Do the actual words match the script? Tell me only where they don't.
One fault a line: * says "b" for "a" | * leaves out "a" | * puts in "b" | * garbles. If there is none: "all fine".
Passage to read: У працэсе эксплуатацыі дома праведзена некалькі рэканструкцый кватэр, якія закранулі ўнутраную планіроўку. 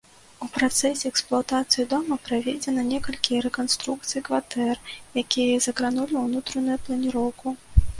all fine